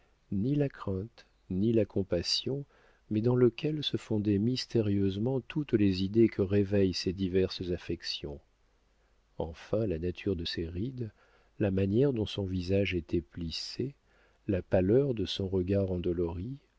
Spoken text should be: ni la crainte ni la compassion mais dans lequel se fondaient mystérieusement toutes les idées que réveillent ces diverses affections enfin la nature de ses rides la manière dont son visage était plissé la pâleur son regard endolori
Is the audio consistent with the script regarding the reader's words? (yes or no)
no